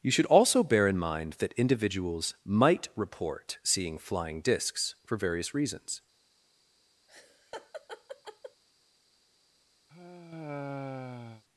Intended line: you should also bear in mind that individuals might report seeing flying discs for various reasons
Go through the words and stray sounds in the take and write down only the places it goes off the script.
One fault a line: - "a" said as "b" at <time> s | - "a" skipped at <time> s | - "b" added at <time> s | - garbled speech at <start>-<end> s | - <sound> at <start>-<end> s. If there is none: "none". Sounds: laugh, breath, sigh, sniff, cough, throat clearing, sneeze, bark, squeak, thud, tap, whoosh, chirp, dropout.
- laugh at 7.1-8.6 s
- sigh at 9.9-11.4 s